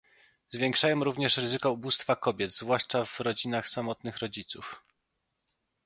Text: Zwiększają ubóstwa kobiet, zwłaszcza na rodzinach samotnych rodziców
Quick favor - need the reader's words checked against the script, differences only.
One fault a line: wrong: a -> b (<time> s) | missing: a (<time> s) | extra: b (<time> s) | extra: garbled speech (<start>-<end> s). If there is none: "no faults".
extra: również ryzyko (1.0 s)
wrong: na -> w (3.0 s)